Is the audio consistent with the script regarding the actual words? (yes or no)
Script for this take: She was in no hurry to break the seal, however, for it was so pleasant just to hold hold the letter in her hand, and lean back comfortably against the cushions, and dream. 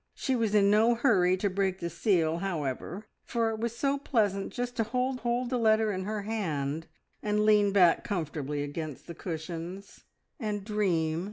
yes